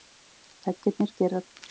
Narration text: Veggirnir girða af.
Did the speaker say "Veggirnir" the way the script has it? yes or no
yes